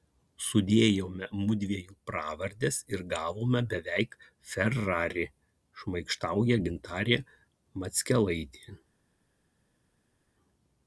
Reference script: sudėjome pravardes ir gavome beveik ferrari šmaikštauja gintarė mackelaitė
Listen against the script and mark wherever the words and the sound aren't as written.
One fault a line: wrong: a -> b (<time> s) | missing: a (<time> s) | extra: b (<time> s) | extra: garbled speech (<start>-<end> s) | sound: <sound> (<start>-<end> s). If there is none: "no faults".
extra: mudviejų (1.4 s)